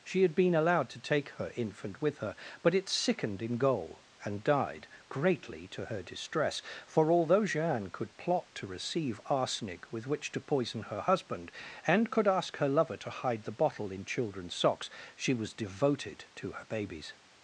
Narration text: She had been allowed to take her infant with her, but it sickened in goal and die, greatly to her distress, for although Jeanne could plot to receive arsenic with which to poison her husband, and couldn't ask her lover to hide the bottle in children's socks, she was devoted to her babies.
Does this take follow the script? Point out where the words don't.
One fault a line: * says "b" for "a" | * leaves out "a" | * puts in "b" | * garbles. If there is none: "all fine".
* says "died" for "die"
* says "could" for "couldn't"